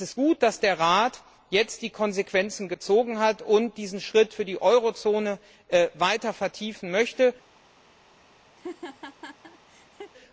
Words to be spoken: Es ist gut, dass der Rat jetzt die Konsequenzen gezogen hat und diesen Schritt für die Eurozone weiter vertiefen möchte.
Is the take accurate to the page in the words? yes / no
yes